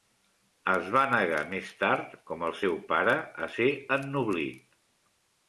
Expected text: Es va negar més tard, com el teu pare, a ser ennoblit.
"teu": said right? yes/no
no